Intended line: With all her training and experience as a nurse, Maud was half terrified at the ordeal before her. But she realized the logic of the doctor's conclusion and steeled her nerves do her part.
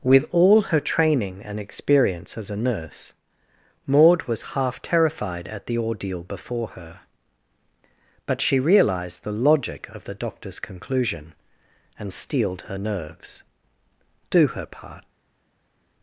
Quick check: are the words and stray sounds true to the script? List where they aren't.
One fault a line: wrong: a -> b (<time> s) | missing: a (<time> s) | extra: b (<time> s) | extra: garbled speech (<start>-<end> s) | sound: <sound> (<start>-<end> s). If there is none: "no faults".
no faults